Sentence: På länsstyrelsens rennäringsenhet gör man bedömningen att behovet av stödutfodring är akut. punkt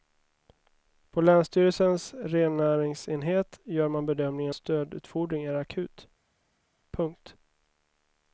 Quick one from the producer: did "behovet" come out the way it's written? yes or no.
no